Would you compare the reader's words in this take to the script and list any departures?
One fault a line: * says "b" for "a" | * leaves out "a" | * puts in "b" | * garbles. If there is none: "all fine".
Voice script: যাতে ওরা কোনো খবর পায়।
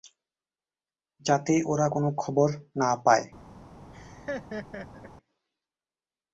* puts in "না"